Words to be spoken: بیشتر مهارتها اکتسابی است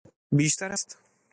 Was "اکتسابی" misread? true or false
true